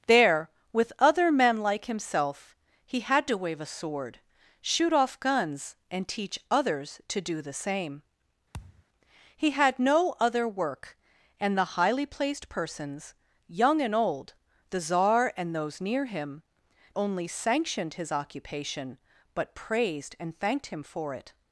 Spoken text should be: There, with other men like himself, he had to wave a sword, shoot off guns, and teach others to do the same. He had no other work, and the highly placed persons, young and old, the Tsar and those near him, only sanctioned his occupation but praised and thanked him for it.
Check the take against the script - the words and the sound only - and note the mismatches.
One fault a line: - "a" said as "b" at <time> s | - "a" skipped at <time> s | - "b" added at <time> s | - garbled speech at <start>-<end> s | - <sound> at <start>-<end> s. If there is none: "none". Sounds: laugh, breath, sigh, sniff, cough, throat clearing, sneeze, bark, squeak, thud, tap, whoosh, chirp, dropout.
- thud at 8.5-8.8 s